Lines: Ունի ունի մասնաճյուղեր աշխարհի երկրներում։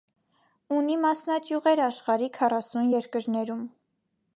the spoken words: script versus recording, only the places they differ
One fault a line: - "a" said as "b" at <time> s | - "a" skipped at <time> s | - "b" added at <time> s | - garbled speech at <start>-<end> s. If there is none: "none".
- "ունի" skipped at 0.9 s
- "քառասուն" added at 2.4 s